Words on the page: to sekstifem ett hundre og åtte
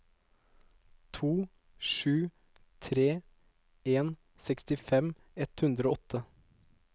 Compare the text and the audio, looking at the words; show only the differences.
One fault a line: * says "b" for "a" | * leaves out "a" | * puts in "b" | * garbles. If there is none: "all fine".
* puts in "sju tre en"